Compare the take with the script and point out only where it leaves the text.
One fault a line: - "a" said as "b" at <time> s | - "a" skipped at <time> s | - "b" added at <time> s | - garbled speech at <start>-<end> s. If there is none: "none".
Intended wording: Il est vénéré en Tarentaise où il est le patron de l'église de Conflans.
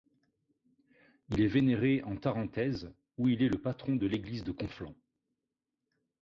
none